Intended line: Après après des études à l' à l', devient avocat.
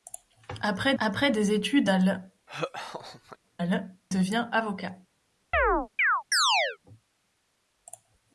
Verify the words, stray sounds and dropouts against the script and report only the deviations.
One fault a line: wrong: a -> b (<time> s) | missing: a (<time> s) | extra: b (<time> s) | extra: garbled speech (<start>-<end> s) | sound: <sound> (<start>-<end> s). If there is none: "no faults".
sound: laugh (2.5-3.4 s)
sound: chirp (5.5-6.8 s)